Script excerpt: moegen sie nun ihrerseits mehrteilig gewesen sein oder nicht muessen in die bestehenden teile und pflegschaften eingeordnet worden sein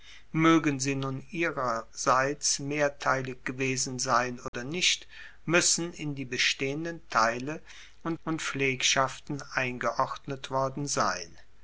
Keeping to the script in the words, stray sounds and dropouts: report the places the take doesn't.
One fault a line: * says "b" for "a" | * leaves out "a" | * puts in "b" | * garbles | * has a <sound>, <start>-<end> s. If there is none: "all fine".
* has a dropout, 4.5-4.5 s
* puts in "und"